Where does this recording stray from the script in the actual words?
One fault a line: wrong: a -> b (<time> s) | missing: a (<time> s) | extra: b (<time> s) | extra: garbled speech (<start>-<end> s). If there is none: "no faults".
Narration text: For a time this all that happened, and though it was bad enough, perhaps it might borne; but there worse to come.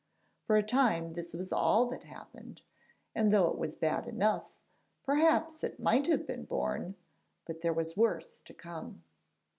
extra: was (1.4 s)
extra: have been (6.1 s)
extra: was (7.7 s)